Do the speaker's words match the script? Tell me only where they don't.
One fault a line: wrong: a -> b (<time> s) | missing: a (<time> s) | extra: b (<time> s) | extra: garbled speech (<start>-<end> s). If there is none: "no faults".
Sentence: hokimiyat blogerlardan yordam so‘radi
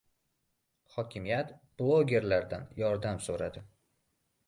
no faults